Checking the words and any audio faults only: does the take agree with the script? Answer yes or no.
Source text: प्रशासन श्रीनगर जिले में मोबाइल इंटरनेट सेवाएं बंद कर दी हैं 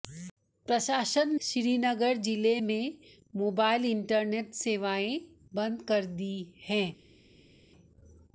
yes